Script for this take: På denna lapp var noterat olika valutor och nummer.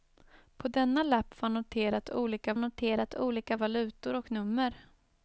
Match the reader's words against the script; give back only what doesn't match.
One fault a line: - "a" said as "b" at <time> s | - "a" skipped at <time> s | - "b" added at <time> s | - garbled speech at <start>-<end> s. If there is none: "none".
- "noterat olika" added at 2.6 s